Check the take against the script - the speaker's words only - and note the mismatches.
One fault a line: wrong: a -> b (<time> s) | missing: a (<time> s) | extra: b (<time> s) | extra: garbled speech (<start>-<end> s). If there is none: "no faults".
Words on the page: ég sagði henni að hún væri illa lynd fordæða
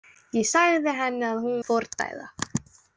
missing: væri illa lynd (1.6 s)